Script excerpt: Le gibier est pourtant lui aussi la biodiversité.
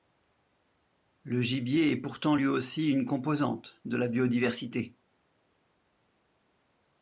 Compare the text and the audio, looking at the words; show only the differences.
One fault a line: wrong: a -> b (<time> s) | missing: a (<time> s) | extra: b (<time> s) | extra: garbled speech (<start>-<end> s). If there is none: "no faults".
extra: une composante de (2.9 s)